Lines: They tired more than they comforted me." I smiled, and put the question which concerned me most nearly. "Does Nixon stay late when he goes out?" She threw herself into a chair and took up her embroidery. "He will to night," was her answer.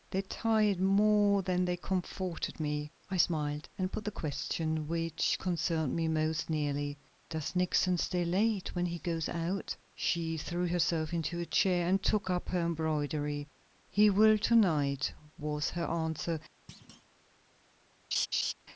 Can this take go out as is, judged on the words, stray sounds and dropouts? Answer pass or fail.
fail